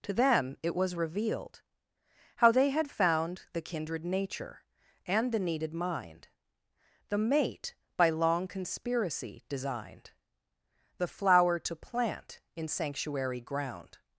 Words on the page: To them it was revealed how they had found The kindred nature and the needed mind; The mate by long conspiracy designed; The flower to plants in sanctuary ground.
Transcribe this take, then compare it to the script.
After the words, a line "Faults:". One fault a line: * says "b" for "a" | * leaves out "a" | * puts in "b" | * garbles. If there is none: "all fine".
To them it was revealed how they had found The kindred nature and the needed mind; The mate by long conspiracy designed; The flower to plant in sanctuary ground.
Faults:
* says "plant" for "plants"